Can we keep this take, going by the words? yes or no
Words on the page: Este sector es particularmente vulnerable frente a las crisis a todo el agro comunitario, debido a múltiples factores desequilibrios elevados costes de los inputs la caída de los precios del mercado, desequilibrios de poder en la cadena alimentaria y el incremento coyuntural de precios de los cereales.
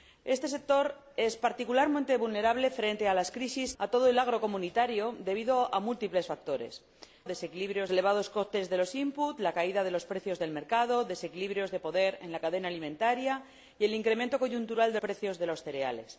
yes